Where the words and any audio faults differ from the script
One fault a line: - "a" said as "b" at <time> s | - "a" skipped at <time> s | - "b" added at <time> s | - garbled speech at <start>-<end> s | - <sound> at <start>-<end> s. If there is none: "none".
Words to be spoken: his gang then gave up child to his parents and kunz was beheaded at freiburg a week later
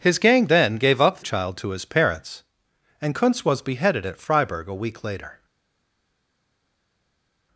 none